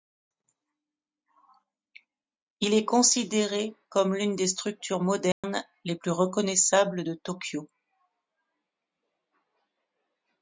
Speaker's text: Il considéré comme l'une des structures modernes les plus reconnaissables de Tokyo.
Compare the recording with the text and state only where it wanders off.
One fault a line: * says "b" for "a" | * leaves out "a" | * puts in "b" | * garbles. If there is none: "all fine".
* puts in "est"